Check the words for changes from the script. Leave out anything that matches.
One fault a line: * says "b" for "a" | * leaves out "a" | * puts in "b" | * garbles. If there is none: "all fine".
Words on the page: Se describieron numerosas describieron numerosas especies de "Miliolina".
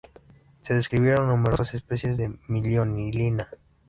* leaves out "describieron numerosas"